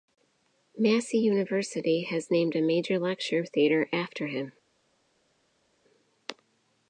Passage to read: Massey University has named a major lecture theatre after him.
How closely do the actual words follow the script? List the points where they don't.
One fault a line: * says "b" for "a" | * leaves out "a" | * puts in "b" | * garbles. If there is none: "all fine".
all fine